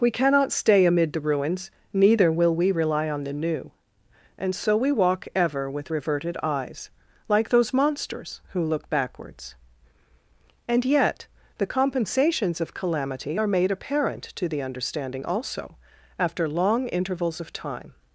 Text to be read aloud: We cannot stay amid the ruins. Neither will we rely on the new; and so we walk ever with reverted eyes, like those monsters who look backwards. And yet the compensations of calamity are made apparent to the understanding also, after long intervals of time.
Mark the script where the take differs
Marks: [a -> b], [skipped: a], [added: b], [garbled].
We cannot stay amid the ruins. Neither will we rely on the new; and so we walk ever with reverted eyes, like those monsters who look backwards. And yet the compensations of calamity are made apparent to the understanding also, after long intervals of time.